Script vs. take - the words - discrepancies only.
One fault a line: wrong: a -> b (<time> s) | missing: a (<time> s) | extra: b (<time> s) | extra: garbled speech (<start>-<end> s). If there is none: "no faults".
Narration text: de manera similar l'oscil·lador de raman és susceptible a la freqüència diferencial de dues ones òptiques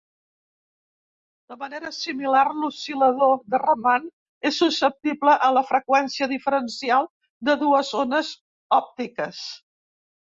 no faults